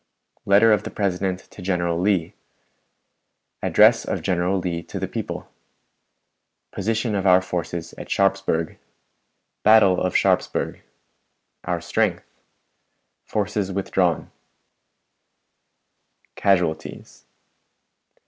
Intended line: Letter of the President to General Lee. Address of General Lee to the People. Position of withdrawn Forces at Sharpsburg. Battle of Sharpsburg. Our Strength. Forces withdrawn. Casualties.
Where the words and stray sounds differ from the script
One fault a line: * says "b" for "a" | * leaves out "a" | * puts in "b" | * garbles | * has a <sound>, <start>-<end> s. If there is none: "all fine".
* says "our" for "withdrawn"